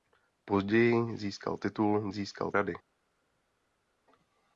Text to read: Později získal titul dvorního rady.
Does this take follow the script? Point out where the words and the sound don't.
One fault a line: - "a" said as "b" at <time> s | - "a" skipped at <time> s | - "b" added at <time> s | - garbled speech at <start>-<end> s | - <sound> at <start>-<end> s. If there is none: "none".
- "dvorního" said as "získal" at 2.1 s